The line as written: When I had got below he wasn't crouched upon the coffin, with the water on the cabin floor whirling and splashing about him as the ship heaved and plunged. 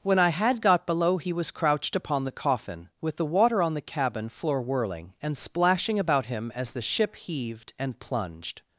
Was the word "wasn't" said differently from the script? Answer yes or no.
yes